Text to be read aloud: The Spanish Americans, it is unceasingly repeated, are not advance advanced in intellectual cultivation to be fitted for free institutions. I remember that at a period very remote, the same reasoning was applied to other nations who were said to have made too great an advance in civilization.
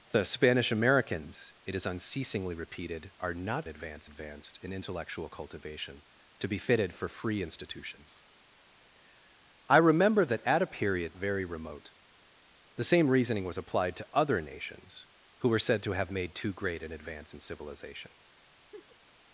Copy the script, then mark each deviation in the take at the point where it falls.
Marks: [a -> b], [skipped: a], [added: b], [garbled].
The Spanish Americans, it is unceasingly repeated, are not advance advanced in intellectual cultivation to be fitted for free institutions. I remember that at a period very remote, the same reasoning was applied to other nations who were said to have made too great an advance in civilization.